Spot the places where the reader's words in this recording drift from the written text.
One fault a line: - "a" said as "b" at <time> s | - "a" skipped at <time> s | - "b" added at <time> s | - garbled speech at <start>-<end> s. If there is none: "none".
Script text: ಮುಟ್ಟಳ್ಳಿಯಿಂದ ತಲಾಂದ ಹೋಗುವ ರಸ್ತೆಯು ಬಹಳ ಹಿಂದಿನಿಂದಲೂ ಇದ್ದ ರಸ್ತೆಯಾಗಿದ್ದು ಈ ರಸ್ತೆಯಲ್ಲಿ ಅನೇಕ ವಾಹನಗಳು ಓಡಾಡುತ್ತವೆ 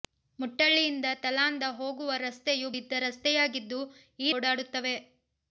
- "ಬಹಳ ಹಿಂದಿನಿಂದಲೂ" skipped at 2.7 s
- "ರಸ್ತೆಯಲ್ಲಿ ಅನೇಕ ವಾಹನಗಳು" skipped at 4.3 s